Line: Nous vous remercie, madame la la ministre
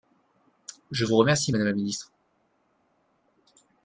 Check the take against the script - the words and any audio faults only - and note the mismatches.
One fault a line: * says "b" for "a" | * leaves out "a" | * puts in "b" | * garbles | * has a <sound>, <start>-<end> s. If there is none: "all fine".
* says "Je" for "Nous"
* leaves out "la"